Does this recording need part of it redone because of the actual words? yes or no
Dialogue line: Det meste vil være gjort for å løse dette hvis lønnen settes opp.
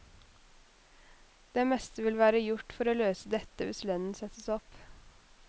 no